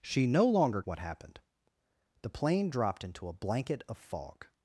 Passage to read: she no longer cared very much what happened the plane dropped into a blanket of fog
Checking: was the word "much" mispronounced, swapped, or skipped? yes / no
yes